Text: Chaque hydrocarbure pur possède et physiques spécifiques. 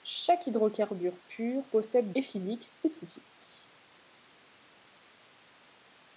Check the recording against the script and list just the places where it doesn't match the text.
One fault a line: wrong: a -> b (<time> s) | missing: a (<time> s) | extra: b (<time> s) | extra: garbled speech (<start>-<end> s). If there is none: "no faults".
no faults